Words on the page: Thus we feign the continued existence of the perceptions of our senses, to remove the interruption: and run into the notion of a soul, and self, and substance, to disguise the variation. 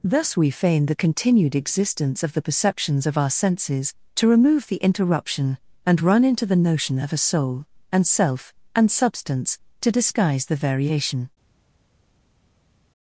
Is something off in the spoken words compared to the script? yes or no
no